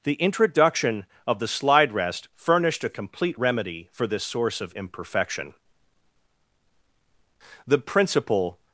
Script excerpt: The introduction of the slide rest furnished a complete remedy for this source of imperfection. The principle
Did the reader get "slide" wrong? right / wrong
right